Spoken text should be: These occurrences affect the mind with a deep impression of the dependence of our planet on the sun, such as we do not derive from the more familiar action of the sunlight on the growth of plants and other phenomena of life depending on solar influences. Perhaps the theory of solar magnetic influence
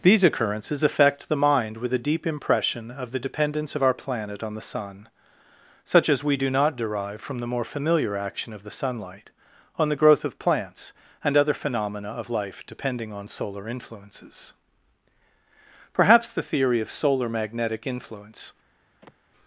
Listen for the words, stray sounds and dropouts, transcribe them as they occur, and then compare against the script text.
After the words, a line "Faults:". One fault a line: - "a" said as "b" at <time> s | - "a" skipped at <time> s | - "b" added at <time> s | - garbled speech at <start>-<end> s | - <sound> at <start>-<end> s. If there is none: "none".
These occurrences affect the mind with a deep impression of the dependence of our planet on the sun, such as we do not derive from the more familiar action of the sunlight on the growth of plants and other phenomena of life depending on solar influences. Perhaps the theory of solar magnetic influence
Faults:
- sigh at 19.0-19.2 s